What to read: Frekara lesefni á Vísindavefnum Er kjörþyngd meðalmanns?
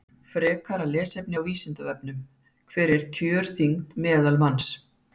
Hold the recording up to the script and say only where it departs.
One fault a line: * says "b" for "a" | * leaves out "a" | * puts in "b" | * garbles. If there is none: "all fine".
* puts in "Hver"